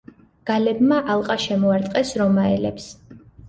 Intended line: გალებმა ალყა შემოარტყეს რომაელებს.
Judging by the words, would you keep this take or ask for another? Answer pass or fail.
pass